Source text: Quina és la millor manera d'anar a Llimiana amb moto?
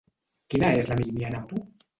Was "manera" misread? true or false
true